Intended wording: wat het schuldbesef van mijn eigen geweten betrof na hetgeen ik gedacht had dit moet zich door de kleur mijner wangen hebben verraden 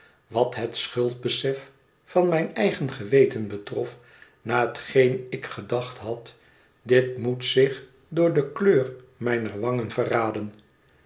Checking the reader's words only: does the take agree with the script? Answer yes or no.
no